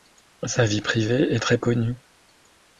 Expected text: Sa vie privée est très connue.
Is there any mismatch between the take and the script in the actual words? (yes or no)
no